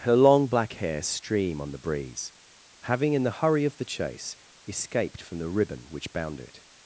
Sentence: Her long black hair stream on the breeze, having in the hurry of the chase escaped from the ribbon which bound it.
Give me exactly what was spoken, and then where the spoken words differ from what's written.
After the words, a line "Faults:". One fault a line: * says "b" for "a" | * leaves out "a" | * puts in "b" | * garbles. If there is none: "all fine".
Her long black hair stream on the breeze, having in the hurry of the chase escaped from the ribbon which bound it.
Faults:
all fine